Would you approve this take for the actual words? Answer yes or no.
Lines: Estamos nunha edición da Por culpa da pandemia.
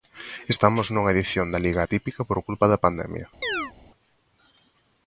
no